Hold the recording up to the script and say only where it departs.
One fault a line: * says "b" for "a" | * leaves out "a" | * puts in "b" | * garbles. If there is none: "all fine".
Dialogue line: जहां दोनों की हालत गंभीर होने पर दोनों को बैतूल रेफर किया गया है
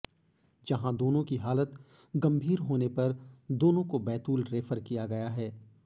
all fine